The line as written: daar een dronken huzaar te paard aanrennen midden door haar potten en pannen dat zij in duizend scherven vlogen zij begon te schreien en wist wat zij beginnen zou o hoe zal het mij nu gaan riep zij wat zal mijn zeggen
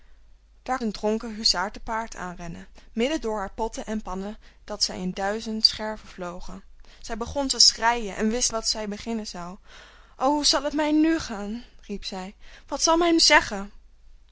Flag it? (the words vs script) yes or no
no